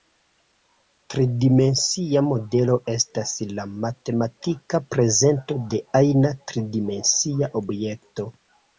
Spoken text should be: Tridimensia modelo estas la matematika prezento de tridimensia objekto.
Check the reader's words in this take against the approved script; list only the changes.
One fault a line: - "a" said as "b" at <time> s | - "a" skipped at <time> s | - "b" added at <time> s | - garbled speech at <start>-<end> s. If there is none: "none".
- "ajna" added at 6.0 s